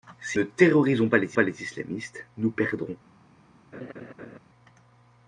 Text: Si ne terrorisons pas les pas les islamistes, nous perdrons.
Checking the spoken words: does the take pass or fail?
pass